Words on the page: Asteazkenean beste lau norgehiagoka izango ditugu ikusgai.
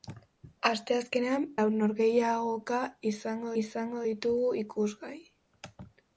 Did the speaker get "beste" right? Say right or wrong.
wrong